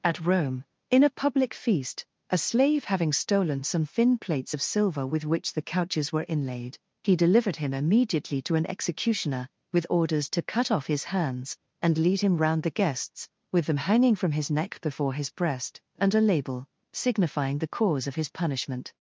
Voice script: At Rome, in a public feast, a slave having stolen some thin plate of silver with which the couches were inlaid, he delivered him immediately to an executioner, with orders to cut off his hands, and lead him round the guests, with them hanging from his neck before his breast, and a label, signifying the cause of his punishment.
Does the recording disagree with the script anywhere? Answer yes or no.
yes